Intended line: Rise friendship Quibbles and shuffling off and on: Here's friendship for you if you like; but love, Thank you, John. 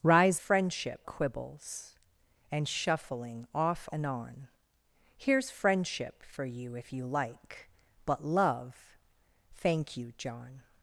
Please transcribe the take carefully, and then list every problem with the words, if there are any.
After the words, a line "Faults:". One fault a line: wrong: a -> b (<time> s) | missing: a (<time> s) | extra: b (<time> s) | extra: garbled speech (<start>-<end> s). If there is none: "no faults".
Rise friendship Quibbles and shuffling off and on: Here's friendship for you if you like; but love, Thank you, John.
Faults:
no faults